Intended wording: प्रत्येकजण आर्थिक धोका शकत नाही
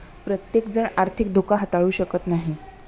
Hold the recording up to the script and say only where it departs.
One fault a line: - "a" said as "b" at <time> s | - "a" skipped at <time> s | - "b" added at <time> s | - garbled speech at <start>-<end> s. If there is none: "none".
- "हाताळू" added at 1.5 s